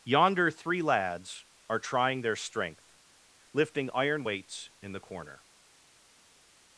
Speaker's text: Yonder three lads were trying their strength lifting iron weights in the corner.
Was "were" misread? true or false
true